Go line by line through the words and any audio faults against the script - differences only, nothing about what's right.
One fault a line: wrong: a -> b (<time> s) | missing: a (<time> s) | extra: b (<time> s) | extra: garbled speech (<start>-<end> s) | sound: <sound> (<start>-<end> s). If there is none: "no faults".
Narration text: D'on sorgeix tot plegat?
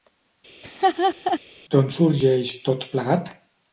sound: laugh (0.6-1.4 s)